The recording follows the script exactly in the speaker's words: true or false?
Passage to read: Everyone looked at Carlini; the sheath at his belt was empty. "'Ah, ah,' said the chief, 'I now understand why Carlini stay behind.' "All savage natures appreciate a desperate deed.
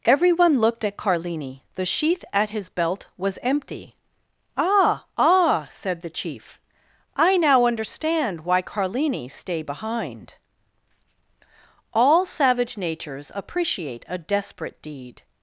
true